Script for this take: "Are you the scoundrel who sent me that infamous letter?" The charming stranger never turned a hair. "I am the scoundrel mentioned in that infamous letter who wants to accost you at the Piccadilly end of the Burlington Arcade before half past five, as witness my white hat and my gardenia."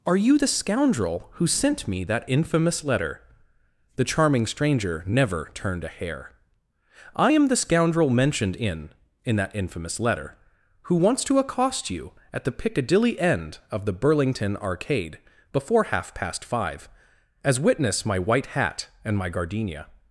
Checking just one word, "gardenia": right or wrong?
right